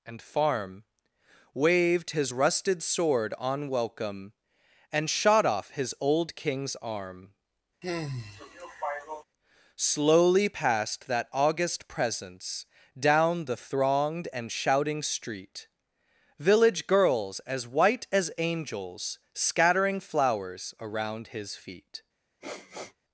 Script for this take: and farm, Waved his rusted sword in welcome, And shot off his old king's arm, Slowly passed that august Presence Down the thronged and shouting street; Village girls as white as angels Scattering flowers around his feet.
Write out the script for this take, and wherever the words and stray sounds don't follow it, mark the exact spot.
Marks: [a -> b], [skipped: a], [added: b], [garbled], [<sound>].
and farm, Waved his rusted sword [in -> on] welcome, And shot off his old king's arm, [sigh] Slowly passed that august Presence Down the thronged and shouting street; Village girls as white as angels Scattering flowers around his feet. [sniff]